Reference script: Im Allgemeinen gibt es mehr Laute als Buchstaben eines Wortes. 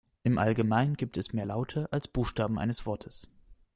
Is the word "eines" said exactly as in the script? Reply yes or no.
yes